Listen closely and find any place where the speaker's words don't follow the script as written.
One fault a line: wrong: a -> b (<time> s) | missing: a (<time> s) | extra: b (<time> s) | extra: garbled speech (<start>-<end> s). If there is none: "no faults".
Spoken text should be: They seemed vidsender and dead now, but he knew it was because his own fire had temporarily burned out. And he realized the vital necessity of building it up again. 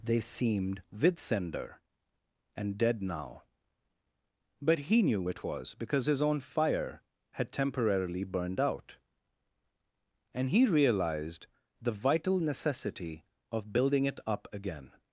no faults